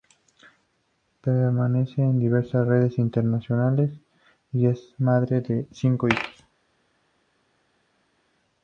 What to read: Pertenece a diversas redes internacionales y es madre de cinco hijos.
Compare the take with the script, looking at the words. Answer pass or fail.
pass